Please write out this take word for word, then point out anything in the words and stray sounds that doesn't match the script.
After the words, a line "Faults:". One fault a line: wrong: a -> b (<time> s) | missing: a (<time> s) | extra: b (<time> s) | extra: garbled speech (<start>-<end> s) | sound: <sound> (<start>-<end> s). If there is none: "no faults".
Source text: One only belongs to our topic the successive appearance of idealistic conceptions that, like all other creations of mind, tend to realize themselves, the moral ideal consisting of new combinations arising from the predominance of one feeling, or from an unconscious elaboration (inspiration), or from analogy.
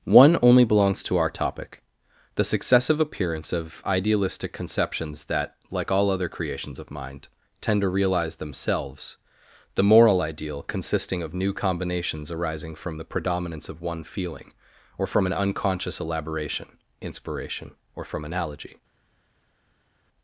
One only belongs to our topic the successive appearance of idealistic conceptions that, like all other creations of mind, tend to realize themselves, the moral ideal consisting of new combinations arising from the predominance of one feeling, or from an unconscious elaboration (inspiration), or from analogy.
Faults:
no faults